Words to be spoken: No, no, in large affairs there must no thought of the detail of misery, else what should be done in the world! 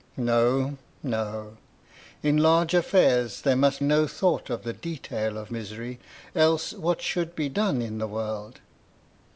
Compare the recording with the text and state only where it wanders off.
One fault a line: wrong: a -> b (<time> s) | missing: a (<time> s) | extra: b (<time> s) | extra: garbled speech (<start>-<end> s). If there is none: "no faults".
no faults